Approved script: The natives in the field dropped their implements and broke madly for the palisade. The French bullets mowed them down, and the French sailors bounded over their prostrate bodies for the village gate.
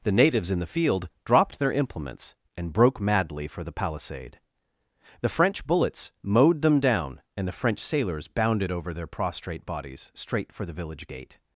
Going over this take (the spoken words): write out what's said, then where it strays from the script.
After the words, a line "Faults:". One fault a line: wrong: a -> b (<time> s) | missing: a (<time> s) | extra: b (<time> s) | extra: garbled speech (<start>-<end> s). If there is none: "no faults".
The natives in the field dropped their implements and broke madly for the palisade. The French bullets mowed them down, and the French sailors bounded over their prostrate bodies straight for the village gate.
Faults:
extra: straight (10.1 s)